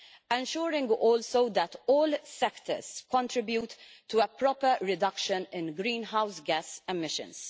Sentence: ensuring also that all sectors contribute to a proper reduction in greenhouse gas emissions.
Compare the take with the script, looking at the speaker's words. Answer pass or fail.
pass